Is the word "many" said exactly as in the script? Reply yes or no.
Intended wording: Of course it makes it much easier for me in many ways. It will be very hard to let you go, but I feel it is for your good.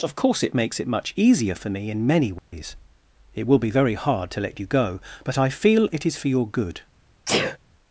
yes